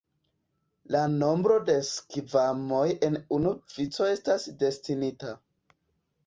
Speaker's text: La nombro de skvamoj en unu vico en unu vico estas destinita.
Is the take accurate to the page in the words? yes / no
no